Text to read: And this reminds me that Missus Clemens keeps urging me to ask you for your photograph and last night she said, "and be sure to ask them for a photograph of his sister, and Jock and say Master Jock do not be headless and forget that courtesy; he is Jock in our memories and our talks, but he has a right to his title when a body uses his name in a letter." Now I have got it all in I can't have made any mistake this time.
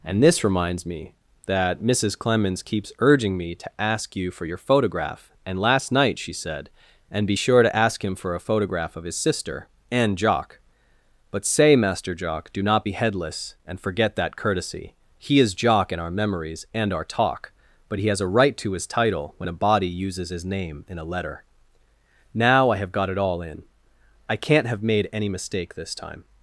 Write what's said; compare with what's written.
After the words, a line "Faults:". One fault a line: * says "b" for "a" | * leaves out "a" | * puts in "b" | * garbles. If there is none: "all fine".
And this reminds me that Missus Clemens keeps urging me to ask you for your photograph and last night she said, "and be sure to ask him for a photograph of his sister, and Jock but say Master Jock do not be headless and forget that courtesy; he is Jock in our memories and our talk, but he has a right to his title when a body uses his name in a letter." Now I have got it all in I can't have made any mistake this time.
Faults:
* says "him" for "them"
* says "but" for "and"
* says "talk" for "talks"